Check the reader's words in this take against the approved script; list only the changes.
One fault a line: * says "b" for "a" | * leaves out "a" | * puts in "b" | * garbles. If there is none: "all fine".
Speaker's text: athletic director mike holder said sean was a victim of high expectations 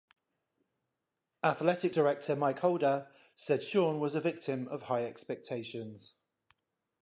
all fine